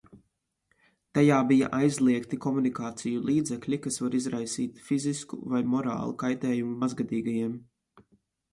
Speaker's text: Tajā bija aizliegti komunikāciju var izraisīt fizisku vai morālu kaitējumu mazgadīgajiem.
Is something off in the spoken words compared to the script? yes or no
yes